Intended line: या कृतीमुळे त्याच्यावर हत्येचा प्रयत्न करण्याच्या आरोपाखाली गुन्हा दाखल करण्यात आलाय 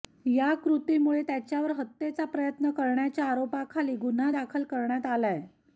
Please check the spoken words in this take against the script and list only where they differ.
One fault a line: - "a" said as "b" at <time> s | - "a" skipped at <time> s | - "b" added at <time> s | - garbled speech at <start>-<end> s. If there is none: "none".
none